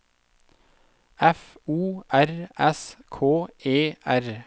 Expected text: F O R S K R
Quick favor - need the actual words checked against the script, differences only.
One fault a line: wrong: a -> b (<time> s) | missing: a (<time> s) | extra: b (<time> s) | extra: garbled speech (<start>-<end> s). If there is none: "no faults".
extra: E (3.6 s)